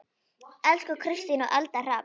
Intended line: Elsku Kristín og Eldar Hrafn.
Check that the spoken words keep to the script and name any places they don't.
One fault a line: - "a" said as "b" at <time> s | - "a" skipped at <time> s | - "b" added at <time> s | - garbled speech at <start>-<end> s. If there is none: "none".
none